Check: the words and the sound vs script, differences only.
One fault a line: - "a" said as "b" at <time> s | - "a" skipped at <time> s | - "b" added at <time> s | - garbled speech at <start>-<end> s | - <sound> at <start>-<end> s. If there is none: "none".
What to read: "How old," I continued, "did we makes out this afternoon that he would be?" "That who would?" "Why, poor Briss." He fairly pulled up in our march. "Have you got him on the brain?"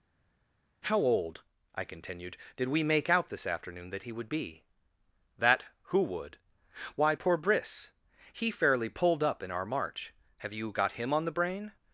- "makes" said as "make" at 2.8 s